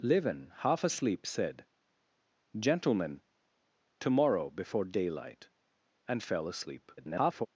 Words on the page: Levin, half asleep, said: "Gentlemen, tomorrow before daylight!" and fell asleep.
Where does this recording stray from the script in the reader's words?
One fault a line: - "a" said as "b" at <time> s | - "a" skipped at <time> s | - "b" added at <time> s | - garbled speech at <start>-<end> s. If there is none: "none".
- garbled speech at 7.0-7.5 s